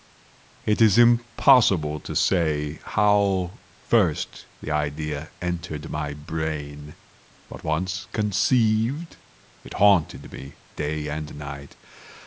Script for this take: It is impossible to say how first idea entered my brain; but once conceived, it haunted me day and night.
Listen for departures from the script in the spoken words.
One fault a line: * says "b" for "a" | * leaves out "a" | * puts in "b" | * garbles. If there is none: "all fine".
* puts in "the"